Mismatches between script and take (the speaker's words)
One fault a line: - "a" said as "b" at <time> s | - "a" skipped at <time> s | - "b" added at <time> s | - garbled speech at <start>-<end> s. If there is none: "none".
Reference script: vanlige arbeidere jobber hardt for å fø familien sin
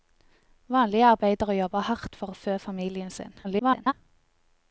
- garbled speech at 3.4-3.9 s